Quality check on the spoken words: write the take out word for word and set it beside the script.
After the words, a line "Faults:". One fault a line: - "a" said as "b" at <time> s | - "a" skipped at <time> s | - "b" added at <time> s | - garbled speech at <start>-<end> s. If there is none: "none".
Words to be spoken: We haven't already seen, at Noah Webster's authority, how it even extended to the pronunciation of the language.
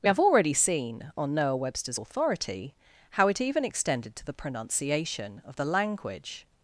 We have already seen, on Noah Webster's authority, how it even extended to the pronunciation of the language.
Faults:
- "haven't" said as "have" at 0.1 s
- "at" said as "on" at 1.2 s